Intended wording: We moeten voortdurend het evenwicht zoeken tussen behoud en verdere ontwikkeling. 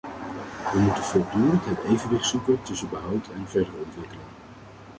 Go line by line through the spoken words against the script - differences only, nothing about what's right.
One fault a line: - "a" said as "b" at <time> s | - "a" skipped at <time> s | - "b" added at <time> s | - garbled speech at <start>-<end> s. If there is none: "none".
none